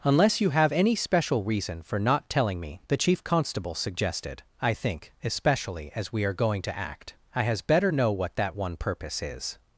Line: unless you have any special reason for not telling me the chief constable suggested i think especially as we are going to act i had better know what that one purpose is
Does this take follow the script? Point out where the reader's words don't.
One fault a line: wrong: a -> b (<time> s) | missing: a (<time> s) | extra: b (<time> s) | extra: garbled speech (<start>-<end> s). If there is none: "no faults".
wrong: had -> has (7.4 s)